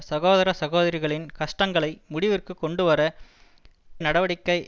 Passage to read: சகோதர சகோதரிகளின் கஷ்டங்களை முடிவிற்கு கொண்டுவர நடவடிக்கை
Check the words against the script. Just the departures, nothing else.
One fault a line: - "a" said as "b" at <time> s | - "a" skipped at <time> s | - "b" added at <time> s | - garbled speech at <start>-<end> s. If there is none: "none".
none